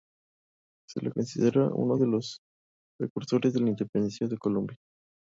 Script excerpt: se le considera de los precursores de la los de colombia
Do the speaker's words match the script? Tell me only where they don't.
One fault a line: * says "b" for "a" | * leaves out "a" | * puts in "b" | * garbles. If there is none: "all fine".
* puts in "uno"
* says "independencia" for "los"